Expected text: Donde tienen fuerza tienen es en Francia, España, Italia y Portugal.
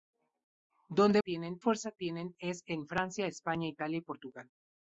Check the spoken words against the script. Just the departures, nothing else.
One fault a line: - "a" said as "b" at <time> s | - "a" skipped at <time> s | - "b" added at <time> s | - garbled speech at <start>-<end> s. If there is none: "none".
none